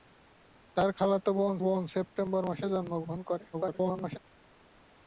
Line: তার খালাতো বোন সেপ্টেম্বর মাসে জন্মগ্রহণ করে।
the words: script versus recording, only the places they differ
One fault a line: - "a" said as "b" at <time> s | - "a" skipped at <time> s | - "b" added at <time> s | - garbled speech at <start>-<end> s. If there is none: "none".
- "বোন" added at 1.6 s
- garbled speech at 3.5-4.2 s